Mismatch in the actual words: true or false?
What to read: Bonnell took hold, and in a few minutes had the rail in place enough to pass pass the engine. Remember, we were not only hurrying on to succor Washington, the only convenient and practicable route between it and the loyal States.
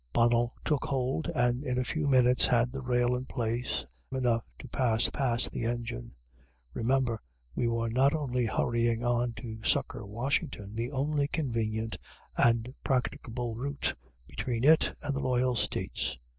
false